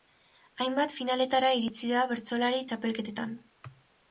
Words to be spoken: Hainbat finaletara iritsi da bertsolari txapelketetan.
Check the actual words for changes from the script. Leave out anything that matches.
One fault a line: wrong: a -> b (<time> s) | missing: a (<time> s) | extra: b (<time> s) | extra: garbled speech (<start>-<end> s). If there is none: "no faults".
no faults